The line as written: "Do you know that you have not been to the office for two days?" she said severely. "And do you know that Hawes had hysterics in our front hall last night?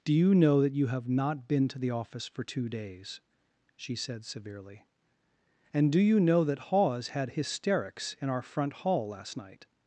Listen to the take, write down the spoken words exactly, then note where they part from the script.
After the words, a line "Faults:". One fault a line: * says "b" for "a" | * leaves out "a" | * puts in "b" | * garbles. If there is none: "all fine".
"Do you know that you have not been to the office for two days?" she said severely. "And do you know that Hawes had hysterics in our front hall last night?
Faults:
all fine